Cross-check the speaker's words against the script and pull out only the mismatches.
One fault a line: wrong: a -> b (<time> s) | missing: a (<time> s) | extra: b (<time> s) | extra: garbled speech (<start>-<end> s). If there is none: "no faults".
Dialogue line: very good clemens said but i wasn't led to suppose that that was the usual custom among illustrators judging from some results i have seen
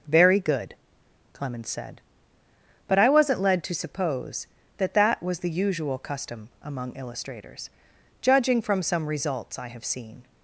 no faults